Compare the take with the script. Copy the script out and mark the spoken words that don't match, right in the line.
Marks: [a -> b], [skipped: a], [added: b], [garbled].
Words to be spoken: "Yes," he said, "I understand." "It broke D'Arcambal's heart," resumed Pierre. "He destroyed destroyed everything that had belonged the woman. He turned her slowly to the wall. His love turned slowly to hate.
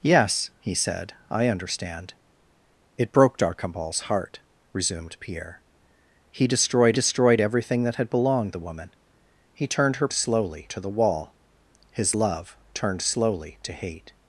"Yes," he said, "I understand." "It broke D'Arcambal's heart," resumed Pierre. "He destroyed destroyed everything that had belonged the woman. He turned her slowly to the wall. His love turned slowly to hate.